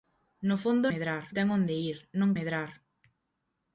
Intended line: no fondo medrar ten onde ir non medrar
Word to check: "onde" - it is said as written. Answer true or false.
true